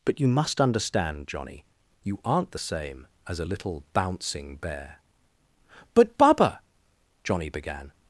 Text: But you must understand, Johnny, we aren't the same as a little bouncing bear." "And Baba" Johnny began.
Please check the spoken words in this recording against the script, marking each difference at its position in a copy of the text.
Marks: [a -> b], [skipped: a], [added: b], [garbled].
But you must understand, Johnny, [we -> you] aren't the same as a little bouncing bear." ["And -> But] Baba" Johnny began.